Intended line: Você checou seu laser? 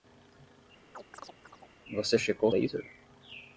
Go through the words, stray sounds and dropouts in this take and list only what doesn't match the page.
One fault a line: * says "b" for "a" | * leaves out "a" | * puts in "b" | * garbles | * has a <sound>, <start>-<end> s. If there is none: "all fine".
* has a chirp, 0.9-1.7 s
* leaves out "seu"